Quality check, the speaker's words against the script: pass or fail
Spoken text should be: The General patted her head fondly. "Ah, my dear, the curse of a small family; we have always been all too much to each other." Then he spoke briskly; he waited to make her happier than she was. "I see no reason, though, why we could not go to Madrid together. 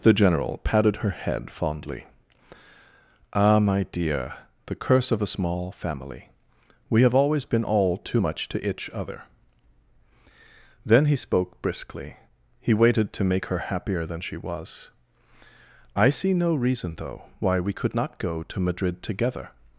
fail